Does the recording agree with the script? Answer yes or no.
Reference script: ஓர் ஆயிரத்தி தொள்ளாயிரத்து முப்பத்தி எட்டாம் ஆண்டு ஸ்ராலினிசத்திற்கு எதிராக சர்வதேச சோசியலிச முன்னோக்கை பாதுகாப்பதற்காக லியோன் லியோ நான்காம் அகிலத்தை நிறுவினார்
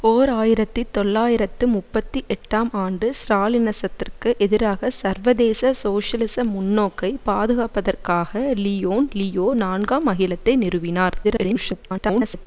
no